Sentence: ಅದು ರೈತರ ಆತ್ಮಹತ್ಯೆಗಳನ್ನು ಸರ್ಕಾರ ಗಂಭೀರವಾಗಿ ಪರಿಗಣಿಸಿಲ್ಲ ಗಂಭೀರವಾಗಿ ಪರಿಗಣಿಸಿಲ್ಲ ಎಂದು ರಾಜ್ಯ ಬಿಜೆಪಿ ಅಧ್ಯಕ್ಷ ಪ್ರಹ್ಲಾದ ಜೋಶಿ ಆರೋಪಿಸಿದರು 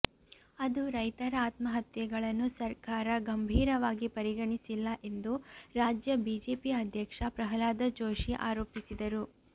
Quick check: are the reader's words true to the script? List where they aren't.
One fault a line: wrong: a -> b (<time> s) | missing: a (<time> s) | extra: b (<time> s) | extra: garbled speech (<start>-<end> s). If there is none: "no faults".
missing: ಗಂಭೀರವಾಗಿ ಪರಿಗಣಿಸಿಲ್ಲ (4.9 s)